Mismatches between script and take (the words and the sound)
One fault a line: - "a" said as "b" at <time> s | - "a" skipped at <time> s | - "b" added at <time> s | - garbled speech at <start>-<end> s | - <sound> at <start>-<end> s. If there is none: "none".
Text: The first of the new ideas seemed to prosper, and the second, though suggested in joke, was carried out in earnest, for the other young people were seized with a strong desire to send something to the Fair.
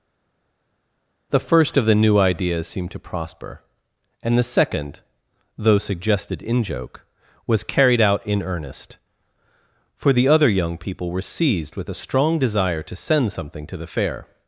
none